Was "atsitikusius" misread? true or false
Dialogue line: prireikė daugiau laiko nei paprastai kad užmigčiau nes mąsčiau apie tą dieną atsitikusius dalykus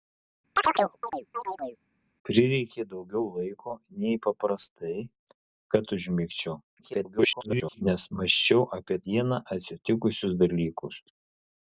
false